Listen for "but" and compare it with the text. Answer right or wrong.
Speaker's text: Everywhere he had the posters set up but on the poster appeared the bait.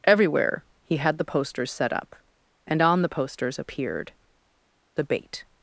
wrong